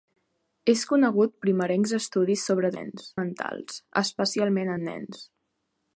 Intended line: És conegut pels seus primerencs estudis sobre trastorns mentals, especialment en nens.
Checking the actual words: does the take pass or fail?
fail